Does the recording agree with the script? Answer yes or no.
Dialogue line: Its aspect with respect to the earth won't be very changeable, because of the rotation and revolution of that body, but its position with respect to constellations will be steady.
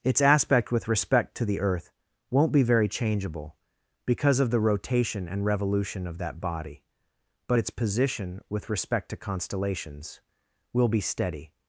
yes